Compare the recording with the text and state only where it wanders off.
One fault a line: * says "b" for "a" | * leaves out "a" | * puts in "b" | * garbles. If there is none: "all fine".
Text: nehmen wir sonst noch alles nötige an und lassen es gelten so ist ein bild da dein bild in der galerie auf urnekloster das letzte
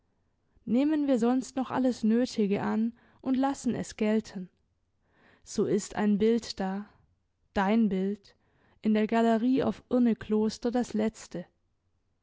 all fine